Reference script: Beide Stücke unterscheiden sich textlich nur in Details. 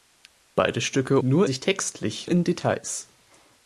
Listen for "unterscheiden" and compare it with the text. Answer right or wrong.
wrong